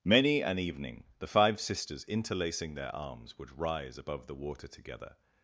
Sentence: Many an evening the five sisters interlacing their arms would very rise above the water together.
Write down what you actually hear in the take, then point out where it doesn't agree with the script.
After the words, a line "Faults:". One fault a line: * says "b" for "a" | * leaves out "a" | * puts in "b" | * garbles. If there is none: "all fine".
Many an evening the five sisters interlacing their arms would rise above the water together.
Faults:
* leaves out "very"